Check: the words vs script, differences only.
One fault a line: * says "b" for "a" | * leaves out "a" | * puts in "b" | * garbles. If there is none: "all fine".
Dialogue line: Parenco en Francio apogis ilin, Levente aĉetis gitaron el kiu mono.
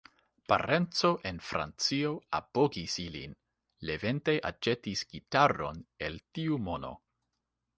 * says "tiu" for "kiu"